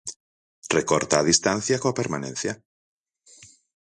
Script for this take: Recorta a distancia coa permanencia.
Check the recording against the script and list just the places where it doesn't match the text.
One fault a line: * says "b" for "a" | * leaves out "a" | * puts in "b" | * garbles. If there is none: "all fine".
all fine